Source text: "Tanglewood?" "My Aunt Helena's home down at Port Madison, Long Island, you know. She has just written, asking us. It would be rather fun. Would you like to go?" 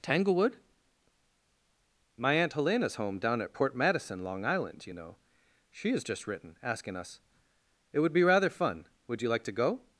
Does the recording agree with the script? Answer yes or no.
yes